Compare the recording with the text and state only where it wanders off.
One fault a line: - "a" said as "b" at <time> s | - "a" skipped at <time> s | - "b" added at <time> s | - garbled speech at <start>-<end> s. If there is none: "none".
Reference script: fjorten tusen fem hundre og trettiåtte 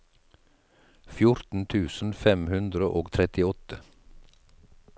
none